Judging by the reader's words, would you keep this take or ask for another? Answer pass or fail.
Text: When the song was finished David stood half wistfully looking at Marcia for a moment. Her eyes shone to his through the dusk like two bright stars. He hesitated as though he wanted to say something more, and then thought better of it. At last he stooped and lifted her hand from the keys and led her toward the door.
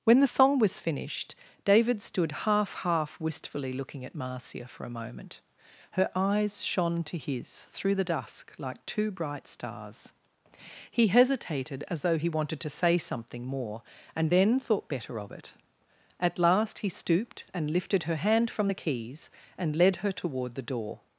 fail